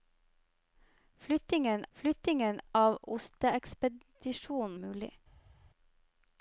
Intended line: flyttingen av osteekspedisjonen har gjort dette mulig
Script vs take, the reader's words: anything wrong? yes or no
yes